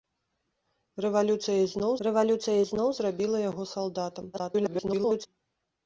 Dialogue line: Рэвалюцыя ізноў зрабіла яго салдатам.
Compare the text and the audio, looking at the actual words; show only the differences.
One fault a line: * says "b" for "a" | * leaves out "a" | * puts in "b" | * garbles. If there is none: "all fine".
* puts in "рэвалюцыя ізноў"
* garbles